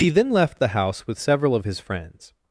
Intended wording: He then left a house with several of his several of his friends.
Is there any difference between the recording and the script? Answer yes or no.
yes